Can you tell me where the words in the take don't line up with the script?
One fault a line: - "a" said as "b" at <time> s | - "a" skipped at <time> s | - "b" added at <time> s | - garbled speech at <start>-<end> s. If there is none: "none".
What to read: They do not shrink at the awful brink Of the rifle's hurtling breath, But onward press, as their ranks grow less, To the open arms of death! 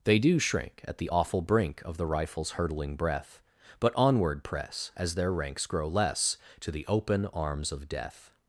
- "not" skipped at 0.4 s